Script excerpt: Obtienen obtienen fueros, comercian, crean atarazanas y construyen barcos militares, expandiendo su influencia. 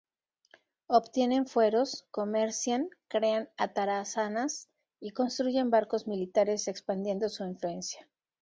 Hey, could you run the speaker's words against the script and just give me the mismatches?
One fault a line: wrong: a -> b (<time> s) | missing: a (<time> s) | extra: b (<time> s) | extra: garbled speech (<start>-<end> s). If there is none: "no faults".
missing: obtienen (1.4 s)